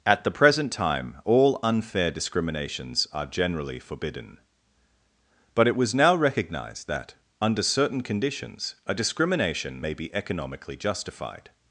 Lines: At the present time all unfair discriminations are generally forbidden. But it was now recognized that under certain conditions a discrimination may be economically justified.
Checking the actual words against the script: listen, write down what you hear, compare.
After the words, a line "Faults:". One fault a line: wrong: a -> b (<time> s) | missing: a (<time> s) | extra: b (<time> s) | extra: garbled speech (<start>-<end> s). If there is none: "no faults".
At the present time all unfair discriminations are generally forbidden. But it was now recognized that under certain conditions a discrimination may be economically justified.
Faults:
no faults